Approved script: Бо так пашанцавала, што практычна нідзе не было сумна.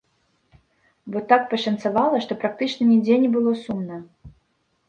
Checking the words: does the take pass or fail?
pass